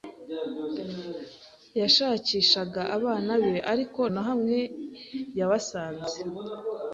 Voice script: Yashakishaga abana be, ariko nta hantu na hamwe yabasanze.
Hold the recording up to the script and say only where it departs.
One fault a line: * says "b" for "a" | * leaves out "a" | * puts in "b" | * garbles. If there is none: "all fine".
* leaves out "nta hantu"